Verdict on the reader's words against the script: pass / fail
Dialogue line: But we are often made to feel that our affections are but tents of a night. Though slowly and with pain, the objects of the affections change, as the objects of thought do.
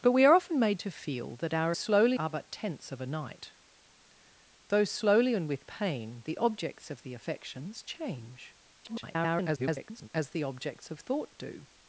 fail